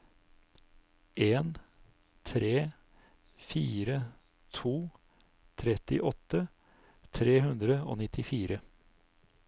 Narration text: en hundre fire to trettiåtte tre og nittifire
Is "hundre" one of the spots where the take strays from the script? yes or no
yes